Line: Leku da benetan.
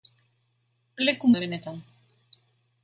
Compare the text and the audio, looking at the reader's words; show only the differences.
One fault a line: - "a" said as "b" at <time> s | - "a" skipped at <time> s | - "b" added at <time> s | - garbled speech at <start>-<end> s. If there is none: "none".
none